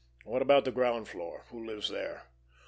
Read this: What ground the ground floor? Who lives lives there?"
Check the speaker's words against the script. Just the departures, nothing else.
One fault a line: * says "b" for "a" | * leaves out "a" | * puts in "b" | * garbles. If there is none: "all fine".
* says "about" for "ground"
* leaves out "lives"